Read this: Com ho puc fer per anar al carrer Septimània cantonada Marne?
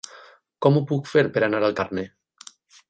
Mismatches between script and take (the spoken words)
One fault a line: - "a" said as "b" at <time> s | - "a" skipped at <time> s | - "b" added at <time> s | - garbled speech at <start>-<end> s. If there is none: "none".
- "carrer Septimània cantonada" skipped at 1.8 s